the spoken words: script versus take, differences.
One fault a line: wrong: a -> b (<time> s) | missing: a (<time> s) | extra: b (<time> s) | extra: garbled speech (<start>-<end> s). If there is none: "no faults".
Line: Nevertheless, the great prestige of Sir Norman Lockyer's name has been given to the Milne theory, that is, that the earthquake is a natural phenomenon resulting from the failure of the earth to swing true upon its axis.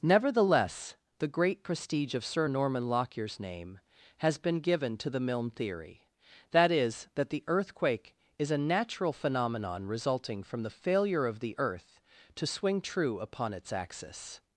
no faults